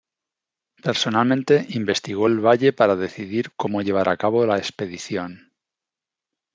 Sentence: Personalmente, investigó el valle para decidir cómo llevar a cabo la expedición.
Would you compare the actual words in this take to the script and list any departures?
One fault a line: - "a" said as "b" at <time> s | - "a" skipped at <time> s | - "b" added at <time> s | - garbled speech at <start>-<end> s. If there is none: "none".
none